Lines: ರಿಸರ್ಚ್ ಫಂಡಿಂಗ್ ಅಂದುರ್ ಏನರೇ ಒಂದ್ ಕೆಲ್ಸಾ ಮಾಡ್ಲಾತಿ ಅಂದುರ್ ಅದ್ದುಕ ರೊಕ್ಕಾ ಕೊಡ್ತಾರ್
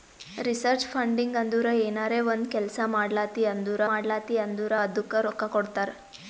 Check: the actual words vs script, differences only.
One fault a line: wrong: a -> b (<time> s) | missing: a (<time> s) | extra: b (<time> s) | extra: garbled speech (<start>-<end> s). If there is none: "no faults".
extra: ಮಾಡ್ಲಾತಿ ಅಂದುರ್ (3.9 s)